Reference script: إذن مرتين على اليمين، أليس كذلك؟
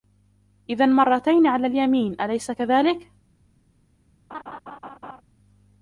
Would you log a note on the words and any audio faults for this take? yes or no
yes